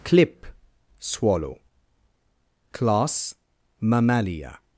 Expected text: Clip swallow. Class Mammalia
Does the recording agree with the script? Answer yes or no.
yes